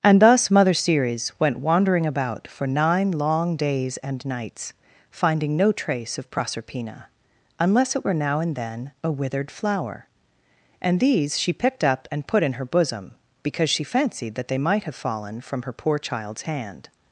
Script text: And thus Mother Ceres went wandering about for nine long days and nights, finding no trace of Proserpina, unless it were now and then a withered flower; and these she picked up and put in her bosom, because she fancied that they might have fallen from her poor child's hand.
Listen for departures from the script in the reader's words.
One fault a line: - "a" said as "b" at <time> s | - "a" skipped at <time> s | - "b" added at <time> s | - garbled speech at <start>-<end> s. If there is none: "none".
none